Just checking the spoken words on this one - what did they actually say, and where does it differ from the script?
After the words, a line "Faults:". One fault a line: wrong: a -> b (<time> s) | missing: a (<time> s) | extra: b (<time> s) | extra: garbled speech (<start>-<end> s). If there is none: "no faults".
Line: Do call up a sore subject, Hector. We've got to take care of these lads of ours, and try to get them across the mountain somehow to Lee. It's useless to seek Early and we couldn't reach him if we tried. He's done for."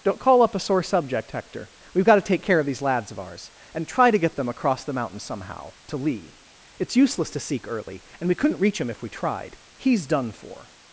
Don't call up a sore subject, Hector. We've got to take care of these lads of ours, and try to get them across the mountain somehow to Lee. It's useless to seek Early and we couldn't reach him if we tried. He's done for."
Faults:
wrong: Do -> Don't (0.0 s)